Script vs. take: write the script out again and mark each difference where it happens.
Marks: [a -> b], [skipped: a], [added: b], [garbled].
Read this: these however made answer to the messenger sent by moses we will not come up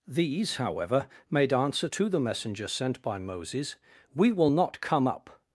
these however made answer to the messenger sent by moses we will not come up